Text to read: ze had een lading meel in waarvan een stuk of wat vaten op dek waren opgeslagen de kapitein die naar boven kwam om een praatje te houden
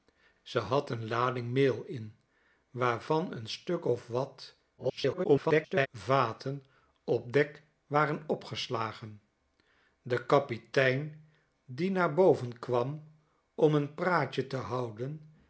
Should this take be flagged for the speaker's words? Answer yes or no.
yes